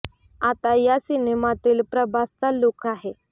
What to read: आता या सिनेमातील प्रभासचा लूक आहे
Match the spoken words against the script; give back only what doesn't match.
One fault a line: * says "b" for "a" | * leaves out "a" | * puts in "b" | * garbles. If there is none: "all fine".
all fine